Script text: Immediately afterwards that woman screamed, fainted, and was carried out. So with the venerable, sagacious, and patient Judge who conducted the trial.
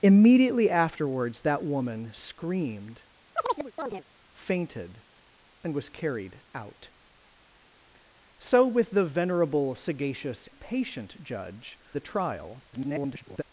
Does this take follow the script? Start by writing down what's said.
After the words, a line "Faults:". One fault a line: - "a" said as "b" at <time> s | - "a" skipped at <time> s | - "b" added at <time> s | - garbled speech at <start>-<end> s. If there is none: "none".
Immediately afterwards that woman screamed, fainted, and was carried out. So with the venerable, sagacious, patient Judge the trial. [garbled]
Faults:
- "and" skipped at 10.5 s
- "who conducted" skipped at 11.8 s
- garbled speech at 12.7-13.4 s